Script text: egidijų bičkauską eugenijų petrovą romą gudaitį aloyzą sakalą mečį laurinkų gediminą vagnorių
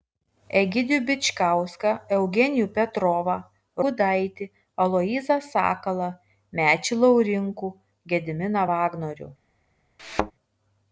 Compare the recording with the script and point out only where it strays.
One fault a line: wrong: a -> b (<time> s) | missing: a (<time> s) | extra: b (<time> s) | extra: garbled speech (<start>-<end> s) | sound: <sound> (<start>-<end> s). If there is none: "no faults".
missing: romą (3.4 s)
sound: thud (10.0-10.3 s)